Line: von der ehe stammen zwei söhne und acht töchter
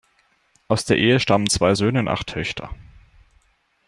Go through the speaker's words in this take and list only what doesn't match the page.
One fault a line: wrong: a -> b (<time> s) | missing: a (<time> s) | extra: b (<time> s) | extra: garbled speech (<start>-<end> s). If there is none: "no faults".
wrong: von -> aus (0.7 s)